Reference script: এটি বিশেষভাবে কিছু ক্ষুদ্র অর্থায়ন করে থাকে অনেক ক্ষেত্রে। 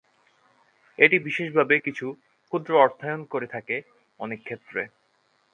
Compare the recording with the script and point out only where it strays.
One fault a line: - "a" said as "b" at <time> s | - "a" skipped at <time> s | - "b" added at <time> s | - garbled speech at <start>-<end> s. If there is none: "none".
none